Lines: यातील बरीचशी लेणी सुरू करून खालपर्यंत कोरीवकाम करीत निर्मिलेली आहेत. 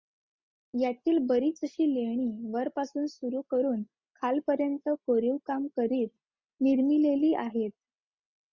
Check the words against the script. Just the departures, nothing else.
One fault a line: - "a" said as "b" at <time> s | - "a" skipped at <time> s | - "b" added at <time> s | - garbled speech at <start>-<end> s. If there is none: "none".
- "वरपासून" added at 2.5 s